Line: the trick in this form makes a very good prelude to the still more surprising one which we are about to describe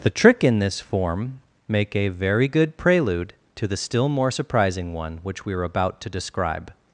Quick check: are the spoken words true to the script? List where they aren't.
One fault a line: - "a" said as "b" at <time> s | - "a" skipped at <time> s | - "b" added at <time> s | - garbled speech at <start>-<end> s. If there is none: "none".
- "makes" said as "make" at 1.7 s